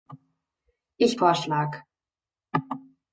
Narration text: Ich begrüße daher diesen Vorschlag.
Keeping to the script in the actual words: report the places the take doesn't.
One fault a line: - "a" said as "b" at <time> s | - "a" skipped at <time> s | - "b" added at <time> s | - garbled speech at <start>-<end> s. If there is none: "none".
- "begrüße daher diesen" skipped at 1.2 s